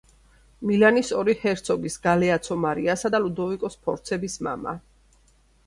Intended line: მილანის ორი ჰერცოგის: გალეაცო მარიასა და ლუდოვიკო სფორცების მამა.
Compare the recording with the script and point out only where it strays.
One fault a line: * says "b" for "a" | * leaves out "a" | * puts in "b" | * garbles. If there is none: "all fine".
all fine